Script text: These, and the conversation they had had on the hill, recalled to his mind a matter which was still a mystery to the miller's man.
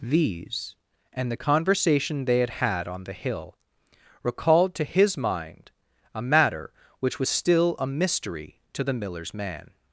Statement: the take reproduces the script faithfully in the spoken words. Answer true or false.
true